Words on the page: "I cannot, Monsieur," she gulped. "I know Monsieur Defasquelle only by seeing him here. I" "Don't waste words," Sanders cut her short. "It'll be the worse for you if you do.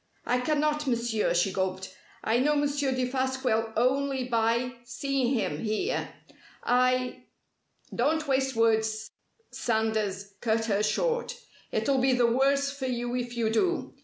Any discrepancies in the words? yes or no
no